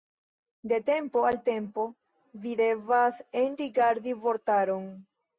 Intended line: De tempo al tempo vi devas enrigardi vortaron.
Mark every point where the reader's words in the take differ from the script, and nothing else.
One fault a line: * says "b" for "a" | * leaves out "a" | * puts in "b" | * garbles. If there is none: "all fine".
all fine